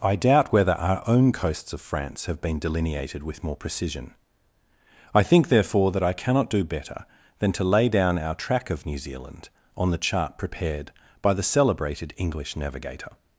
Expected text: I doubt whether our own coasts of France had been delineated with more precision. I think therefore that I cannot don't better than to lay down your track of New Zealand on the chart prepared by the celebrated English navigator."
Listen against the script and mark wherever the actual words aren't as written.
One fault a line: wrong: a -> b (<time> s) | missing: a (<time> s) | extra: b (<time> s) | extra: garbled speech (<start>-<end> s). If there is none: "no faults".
wrong: had -> have (2.2 s)
wrong: don't -> do (6.5 s)
wrong: your -> our (8.2 s)